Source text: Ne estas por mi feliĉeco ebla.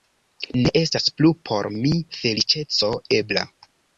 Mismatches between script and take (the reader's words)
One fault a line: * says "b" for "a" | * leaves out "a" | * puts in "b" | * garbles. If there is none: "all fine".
* puts in "plu"